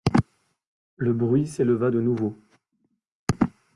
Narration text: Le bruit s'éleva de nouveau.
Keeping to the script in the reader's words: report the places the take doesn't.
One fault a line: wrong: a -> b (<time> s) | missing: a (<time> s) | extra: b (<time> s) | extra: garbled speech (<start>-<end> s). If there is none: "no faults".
no faults